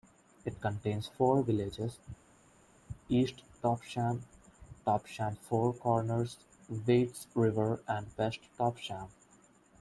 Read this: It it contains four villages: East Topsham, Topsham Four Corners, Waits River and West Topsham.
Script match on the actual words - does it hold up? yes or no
no